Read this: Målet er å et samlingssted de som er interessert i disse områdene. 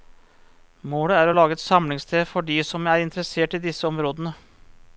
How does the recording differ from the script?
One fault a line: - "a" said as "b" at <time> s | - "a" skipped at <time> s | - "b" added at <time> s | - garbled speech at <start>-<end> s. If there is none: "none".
- "lage" added at 1.3 s
- "for" added at 2.3 s